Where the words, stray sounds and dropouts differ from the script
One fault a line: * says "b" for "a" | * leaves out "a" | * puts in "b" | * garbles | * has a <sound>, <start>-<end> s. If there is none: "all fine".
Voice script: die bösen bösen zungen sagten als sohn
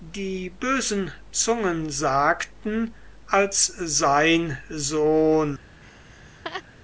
* leaves out "bösen"
* puts in "sein"
* has a laugh, 5.8-6.6 s